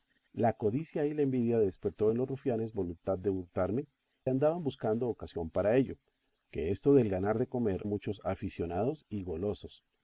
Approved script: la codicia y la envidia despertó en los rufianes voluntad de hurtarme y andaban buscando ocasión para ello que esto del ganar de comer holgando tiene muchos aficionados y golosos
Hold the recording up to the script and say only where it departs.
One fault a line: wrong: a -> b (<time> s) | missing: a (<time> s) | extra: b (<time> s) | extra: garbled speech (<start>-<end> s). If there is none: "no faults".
missing: y (3.9 s)
missing: holgando tiene (7.9 s)